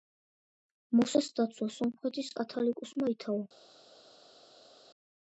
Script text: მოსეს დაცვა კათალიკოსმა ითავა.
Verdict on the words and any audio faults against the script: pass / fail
fail